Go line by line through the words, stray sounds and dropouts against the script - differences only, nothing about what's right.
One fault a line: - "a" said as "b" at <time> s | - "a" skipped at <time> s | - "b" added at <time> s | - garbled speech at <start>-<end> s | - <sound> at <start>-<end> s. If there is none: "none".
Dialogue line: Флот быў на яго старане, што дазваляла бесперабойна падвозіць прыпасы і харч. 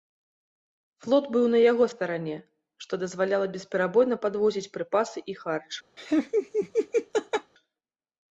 - laugh at 6.0-7.5 s